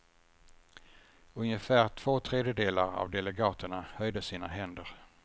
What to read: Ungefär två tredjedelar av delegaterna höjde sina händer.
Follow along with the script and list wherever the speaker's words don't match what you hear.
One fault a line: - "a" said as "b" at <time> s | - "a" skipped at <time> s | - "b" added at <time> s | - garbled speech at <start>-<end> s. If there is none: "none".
none